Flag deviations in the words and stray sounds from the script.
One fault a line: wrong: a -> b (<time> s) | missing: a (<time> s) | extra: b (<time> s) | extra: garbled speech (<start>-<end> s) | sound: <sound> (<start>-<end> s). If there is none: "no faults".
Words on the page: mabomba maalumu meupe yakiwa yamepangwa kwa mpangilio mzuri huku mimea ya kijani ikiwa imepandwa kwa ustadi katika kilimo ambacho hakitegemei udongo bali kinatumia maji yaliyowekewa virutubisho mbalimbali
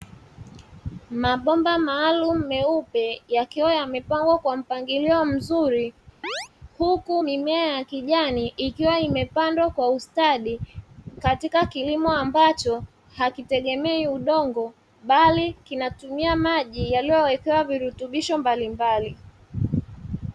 sound: chirp (6.2-6.5 s)